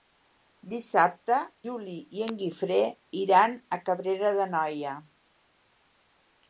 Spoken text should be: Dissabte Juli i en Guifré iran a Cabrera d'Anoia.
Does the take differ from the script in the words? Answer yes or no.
no